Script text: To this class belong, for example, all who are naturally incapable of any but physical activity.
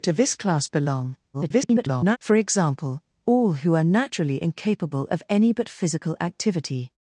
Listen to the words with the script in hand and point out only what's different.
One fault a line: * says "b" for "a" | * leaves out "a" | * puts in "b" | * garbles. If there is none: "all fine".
* garbles